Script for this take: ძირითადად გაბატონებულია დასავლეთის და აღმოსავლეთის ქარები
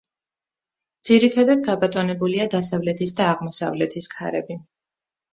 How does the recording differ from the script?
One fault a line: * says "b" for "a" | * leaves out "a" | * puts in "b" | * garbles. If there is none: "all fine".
all fine